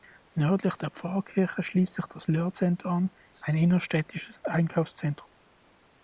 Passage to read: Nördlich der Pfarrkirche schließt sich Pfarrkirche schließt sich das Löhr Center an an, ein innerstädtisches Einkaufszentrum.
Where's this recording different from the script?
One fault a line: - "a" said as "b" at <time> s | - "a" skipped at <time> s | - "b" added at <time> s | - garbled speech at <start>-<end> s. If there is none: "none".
- "Pfarrkirche schließt sich" skipped at 2.1 s
- "an" skipped at 3.1 s